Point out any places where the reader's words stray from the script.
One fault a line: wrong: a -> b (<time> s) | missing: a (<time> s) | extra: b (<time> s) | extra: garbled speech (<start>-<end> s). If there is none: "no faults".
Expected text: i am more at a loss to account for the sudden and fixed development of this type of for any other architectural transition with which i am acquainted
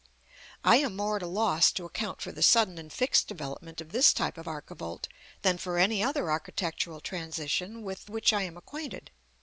extra: archivolt than (4.5 s)